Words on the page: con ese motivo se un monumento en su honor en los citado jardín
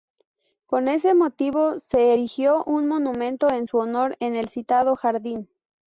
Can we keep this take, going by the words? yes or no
no